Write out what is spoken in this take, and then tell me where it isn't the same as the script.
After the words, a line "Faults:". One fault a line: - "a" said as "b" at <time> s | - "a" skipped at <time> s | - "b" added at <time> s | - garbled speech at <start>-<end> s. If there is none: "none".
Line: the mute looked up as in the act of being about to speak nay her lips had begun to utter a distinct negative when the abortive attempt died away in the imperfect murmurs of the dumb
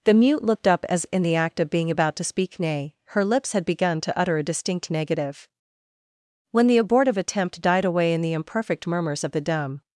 the mute looked up as in the act of being about to speak nay her lips had begun to utter a distinct negative when the abortive attempt died away in the imperfect murmurs of the dumb
Faults:
none